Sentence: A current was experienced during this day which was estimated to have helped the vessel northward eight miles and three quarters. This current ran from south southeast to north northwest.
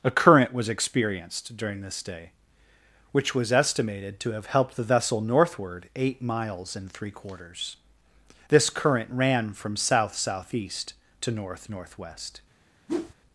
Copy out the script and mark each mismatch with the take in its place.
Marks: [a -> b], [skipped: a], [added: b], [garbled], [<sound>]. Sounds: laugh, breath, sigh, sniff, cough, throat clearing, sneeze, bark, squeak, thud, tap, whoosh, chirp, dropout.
A current was experienced during this day which was estimated to have helped the vessel northward eight miles and three quarters. This current ran from south southeast to north northwest. [whoosh]